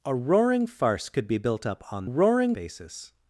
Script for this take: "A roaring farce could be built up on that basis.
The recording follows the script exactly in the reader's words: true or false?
false